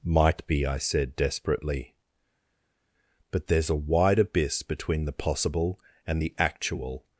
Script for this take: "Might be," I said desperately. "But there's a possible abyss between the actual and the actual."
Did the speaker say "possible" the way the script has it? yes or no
no